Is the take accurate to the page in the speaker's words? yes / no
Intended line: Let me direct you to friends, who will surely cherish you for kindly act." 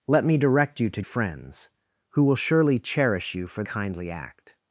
yes